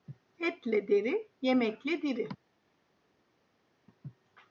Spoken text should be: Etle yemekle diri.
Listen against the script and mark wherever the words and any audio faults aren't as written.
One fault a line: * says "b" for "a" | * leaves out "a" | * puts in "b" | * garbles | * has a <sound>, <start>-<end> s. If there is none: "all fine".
* puts in "deri"